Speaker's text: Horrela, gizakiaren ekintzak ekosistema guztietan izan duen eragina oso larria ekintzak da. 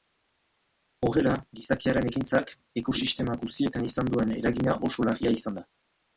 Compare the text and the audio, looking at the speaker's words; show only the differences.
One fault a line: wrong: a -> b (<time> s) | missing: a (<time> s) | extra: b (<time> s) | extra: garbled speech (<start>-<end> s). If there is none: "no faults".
wrong: ekintzak -> izan (5.4 s)